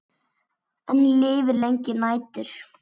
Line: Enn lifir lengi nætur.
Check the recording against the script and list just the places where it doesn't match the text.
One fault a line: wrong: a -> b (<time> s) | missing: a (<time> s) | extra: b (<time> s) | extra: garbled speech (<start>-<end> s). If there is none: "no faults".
no faults